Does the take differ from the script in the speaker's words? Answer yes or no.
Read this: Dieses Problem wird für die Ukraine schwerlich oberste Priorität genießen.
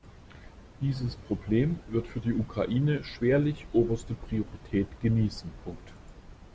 no